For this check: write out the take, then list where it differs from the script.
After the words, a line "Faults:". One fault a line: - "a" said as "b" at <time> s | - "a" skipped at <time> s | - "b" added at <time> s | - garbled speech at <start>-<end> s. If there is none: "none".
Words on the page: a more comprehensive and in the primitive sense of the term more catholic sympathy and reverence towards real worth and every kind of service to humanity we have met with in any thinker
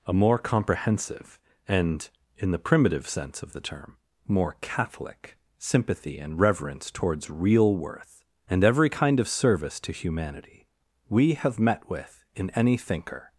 a more comprehensive and in the primitive sense of the term more catholic sympathy and reverence towards real worth and every kind of service to humanity we have met with in any thinker
Faults:
none